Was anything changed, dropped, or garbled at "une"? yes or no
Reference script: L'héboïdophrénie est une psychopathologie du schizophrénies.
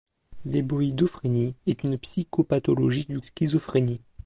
no